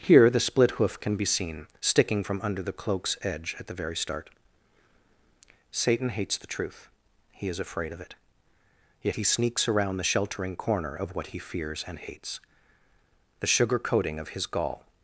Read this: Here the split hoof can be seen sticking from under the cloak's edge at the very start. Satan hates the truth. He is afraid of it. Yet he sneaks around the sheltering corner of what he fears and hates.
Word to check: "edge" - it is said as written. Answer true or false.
true